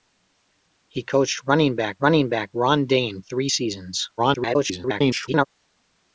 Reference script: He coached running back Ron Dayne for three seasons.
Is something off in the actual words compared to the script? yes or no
yes